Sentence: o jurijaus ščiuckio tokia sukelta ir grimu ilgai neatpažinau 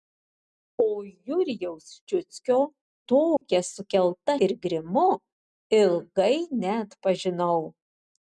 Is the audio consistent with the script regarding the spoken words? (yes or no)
yes